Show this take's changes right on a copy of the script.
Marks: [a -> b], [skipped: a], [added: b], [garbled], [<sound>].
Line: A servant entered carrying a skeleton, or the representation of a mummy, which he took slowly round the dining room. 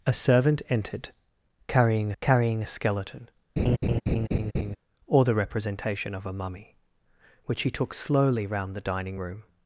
A servant entered carrying [added: carrying] a skeleton, [laugh] or the representation of a mummy, which he took slowly round the dining room.